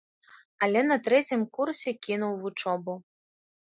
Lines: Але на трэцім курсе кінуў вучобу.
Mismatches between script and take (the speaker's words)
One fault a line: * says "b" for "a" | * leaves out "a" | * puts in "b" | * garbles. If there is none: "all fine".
all fine